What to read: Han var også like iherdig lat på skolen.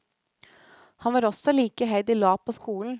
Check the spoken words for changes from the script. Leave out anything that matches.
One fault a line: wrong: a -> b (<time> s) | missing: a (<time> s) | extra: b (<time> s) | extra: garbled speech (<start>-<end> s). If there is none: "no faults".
no faults